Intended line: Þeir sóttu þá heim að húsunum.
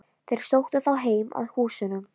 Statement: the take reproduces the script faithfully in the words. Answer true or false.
true